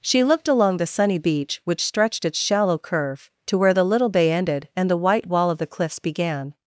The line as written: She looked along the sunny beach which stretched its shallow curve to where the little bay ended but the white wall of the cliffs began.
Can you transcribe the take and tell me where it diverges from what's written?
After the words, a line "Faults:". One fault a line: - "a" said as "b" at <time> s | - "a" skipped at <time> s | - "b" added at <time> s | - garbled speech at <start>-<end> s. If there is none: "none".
She looked along the sunny beach which stretched its shallow curve to where the little bay ended and the white wall of the cliffs began.
Faults:
- "but" said as "and" at 4.7 s